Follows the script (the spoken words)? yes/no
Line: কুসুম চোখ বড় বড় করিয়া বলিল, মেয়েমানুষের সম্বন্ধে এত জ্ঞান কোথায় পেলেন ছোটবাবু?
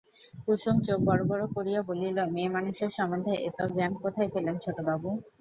yes